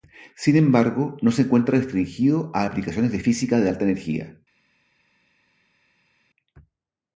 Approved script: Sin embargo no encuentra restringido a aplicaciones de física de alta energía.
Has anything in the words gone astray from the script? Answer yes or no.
yes